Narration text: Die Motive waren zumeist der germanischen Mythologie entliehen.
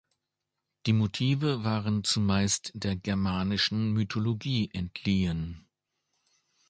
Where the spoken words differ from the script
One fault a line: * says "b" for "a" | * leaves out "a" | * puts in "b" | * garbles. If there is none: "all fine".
all fine